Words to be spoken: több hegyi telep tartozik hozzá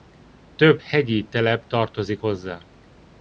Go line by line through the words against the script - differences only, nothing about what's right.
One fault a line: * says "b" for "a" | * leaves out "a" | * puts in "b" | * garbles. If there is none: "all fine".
all fine